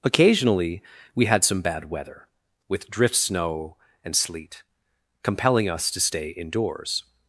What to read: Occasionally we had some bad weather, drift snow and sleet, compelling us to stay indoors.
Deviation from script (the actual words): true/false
true